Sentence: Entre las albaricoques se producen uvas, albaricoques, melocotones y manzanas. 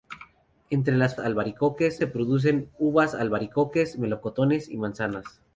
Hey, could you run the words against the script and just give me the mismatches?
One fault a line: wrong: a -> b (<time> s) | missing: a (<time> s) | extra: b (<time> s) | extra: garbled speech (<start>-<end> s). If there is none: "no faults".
no faults